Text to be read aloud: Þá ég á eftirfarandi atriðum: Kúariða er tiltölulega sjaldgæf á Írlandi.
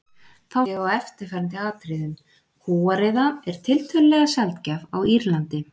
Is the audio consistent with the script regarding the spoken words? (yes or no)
yes